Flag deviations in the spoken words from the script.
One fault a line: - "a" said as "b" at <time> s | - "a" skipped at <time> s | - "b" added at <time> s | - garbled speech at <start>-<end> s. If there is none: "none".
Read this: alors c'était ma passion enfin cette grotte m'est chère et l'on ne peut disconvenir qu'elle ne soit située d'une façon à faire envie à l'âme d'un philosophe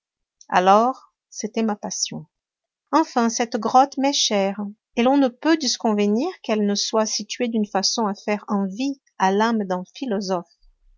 none